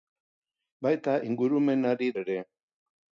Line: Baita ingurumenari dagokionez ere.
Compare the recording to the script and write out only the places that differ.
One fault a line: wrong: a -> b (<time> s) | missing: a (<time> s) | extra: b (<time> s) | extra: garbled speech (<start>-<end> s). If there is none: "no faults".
missing: dagokionez (2.1 s)